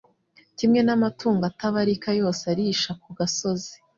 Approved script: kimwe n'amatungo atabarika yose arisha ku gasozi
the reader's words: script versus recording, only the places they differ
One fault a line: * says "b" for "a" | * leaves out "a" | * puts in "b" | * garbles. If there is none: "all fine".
all fine